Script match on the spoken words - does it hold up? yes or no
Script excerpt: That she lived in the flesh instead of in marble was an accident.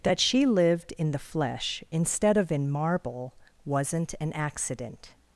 no